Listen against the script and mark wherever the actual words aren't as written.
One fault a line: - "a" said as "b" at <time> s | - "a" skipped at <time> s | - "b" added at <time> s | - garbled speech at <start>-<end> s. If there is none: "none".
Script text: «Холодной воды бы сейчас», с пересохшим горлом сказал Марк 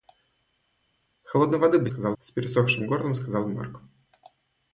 - "сейчас" said as "сказал" at 1.9 s